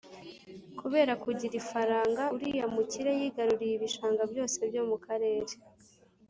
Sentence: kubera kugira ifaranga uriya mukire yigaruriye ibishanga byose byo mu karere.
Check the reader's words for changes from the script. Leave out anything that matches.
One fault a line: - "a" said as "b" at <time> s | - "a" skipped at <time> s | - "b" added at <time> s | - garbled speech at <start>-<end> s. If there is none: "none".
none